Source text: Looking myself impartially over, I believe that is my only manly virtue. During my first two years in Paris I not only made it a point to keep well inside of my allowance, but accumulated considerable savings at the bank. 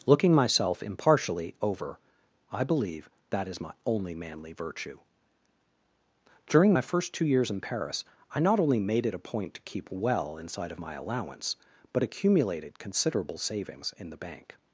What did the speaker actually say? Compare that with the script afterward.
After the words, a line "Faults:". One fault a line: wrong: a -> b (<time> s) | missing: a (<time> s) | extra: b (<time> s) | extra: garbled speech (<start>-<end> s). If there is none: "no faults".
Looking myself impartially over, I believe that is my only manly virtue. During my first two years in Paris I not only made it a point to keep well inside of my allowance, but accumulated considerable savings in the bank.
Faults:
wrong: at -> in (14.0 s)